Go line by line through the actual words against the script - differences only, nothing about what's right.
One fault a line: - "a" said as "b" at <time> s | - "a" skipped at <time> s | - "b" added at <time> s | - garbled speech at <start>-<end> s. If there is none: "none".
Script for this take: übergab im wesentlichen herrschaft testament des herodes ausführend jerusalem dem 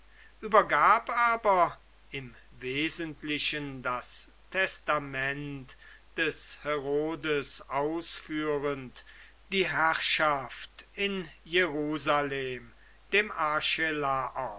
- "aber" added at 1.1 s
- "herrschaft" said as "das" at 3.8 s
- "die herrschaft in" added at 9.5 s